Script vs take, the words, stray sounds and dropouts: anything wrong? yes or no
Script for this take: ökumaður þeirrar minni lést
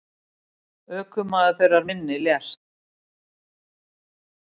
no